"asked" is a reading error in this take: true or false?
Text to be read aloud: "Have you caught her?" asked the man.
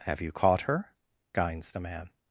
true